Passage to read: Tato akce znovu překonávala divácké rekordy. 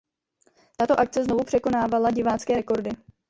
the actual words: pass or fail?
pass